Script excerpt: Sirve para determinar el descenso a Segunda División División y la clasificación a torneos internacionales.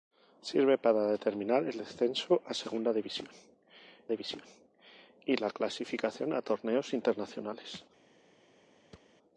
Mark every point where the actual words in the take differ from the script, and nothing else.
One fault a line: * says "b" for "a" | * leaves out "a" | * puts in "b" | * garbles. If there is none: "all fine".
all fine